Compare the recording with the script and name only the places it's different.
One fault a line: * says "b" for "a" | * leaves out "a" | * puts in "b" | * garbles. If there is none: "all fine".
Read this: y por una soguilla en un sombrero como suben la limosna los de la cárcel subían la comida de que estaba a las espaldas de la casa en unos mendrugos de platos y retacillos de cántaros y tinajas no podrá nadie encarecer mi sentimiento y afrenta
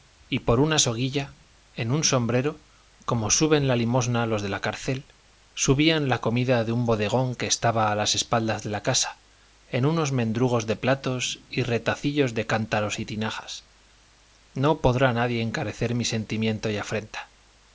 * puts in "un bodegón"